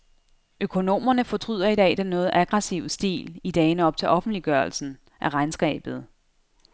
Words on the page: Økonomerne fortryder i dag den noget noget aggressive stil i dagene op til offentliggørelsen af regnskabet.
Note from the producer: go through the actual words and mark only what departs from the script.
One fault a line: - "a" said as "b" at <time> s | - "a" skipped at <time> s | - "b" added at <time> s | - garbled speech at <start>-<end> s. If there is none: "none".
- "noget" skipped at 2.3 s